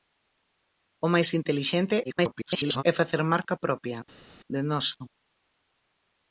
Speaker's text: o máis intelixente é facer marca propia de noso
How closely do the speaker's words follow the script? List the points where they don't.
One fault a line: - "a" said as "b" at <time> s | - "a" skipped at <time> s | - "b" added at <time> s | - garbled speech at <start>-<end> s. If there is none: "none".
- garbled speech at 2.0-2.8 s